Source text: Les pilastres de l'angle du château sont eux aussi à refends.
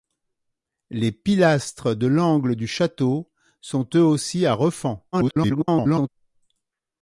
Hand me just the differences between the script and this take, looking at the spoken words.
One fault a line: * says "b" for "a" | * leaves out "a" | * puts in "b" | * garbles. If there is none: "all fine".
* garbles